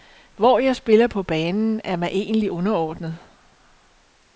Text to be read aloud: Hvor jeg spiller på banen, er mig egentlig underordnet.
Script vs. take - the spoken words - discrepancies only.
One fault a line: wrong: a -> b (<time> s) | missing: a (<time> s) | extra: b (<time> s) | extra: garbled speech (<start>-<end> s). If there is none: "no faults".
no faults